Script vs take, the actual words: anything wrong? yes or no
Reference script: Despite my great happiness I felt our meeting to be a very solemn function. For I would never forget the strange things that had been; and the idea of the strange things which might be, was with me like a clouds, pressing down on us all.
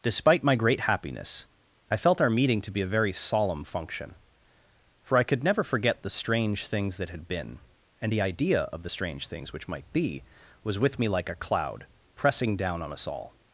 yes